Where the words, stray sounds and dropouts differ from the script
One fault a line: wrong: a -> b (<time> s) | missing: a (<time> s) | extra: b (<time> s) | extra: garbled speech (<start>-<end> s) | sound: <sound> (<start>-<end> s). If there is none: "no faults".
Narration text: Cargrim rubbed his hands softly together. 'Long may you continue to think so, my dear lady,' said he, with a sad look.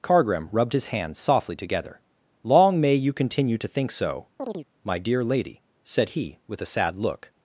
sound: chirp (4.4-4.7 s)